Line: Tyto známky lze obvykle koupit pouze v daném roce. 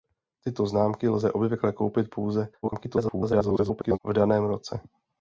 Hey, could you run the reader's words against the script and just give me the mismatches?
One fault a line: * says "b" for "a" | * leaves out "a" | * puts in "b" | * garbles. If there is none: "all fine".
* garbles